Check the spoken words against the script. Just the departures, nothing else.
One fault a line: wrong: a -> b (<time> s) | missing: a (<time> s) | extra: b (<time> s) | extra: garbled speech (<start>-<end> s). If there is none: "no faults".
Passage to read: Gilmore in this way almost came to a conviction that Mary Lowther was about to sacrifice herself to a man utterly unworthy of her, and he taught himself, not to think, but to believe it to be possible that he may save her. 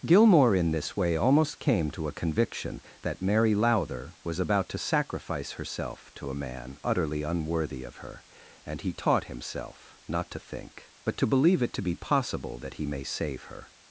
no faults